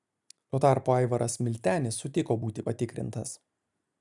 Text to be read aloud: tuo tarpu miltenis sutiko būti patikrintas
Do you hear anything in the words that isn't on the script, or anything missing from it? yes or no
yes